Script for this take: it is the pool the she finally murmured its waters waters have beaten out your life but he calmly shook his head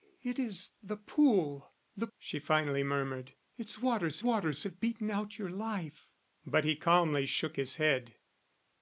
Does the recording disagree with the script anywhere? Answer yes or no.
no